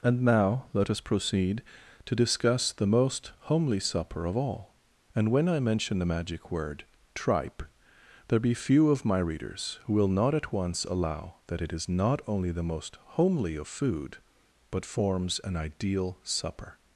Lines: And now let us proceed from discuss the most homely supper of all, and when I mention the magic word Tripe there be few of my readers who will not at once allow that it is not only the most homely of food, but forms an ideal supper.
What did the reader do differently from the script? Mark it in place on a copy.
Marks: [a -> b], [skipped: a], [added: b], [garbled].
And now let us proceed [from -> to] discuss the most homely supper of all, and when I mention the magic word Tripe there be few of my readers who will not at once allow that it is not only the most homely of food, but forms an ideal supper.